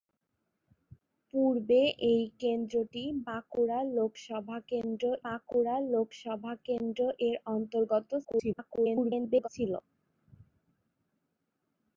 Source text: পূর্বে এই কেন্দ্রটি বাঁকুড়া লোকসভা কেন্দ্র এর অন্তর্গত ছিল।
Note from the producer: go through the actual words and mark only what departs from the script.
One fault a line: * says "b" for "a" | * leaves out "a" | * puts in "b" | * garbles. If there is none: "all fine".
* puts in "বাঁকুড়া লোকসভা কেন্দ্র"
* garbles